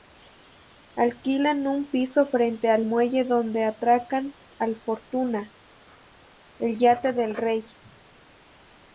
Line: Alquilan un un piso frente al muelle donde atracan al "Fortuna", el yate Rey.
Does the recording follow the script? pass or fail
fail